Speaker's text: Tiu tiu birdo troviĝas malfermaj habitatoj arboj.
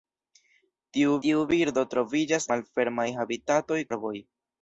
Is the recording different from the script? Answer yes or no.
no